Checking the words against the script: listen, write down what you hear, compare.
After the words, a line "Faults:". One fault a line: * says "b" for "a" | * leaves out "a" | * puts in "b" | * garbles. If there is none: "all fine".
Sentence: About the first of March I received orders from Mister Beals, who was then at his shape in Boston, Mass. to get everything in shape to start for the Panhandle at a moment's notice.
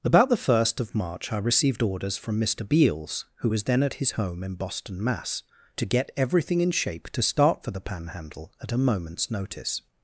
About the first of March I received orders from Mister Beals, who was then at his home in Boston, Mass. to get everything in shape to start for the Panhandle at a moment's notice.
Faults:
* says "home" for "shape"